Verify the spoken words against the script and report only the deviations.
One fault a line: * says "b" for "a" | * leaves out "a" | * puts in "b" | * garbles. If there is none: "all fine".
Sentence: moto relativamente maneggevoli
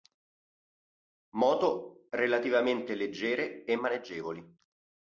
* puts in "leggere e"